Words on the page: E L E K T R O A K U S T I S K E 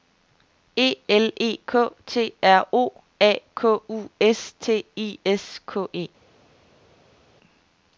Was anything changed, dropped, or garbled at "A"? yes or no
no